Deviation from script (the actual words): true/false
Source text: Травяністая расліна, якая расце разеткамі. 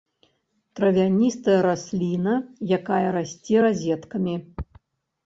false